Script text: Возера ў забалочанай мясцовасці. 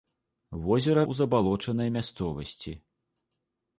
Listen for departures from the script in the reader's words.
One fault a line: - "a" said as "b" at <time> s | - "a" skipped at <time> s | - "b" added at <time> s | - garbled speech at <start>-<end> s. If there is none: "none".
none